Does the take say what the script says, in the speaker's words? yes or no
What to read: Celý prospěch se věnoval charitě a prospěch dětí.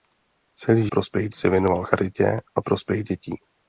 yes